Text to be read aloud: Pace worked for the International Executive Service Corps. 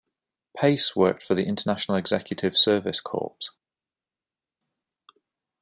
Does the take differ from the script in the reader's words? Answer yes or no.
no